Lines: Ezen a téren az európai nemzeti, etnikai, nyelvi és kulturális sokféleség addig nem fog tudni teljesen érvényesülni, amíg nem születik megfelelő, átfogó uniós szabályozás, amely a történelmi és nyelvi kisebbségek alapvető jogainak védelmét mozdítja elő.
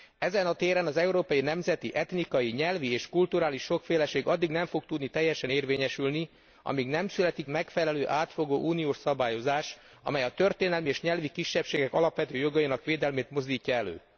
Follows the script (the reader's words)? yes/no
yes